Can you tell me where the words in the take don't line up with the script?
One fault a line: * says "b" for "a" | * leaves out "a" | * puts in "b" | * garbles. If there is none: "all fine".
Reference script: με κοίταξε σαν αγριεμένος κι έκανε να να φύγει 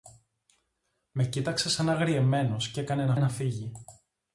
all fine